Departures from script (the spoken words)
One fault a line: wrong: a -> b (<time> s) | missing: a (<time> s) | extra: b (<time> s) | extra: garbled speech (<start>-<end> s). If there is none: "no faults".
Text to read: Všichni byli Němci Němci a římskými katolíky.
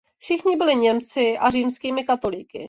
missing: Němci (1.4 s)